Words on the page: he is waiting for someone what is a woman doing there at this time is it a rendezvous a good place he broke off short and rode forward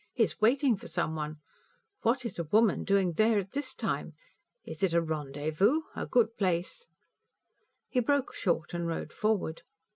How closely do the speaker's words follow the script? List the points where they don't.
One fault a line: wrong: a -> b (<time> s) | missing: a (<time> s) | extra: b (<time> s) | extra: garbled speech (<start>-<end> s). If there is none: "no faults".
missing: off (8.3 s)